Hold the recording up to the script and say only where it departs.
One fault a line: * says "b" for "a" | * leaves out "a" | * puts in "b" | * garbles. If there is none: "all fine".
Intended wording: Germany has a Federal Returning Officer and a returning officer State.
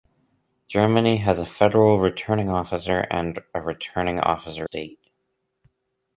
all fine